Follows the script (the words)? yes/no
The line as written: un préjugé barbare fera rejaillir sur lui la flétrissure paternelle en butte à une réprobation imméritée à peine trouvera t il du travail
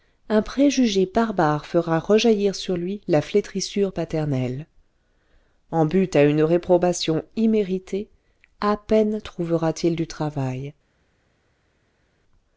yes